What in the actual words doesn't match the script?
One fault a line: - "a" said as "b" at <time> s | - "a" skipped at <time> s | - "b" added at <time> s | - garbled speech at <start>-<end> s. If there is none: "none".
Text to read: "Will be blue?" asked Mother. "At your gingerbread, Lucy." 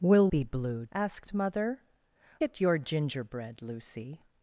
none